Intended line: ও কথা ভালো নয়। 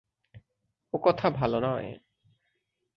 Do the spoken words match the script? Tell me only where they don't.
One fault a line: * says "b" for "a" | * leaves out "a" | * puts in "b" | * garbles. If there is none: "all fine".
all fine